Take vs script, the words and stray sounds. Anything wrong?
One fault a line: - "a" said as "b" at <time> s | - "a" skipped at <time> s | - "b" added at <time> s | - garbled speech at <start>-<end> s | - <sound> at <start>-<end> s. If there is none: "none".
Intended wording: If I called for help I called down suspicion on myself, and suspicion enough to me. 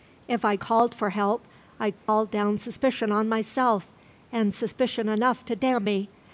- dropout at 2.0-2.1 s
- "damn" added at 5.6 s